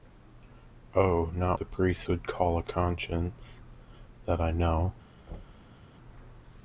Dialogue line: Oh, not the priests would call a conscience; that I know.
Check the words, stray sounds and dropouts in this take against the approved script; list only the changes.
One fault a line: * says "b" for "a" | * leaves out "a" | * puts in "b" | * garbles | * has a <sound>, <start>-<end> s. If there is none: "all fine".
* has a thud, 5.3-5.8 s